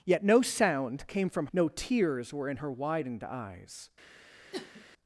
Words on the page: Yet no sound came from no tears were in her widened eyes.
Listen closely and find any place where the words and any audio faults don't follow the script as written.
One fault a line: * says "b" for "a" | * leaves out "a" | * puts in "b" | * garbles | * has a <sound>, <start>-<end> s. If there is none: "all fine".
* has a sniff, 4.5-4.9 s